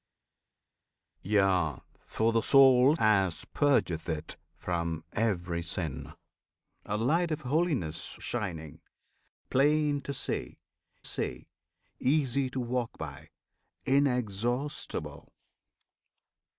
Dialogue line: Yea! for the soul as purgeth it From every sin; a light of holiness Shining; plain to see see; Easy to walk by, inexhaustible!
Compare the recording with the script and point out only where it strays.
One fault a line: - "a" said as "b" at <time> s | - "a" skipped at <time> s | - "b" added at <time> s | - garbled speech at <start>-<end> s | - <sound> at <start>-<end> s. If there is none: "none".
none